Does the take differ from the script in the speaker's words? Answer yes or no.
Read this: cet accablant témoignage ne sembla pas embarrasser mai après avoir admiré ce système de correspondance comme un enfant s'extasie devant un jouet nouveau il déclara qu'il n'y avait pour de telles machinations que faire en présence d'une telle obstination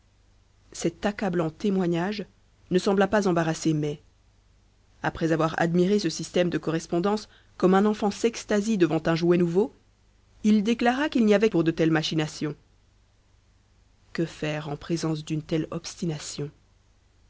no